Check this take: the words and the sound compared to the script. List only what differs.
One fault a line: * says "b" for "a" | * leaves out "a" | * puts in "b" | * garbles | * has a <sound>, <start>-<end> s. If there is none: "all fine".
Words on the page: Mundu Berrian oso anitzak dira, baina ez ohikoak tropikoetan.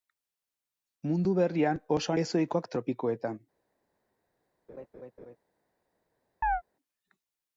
* leaves out "anitzak dira baina"
* has a laugh, 4.7-5.4 s
* has a chirp, 6.4-6.6 s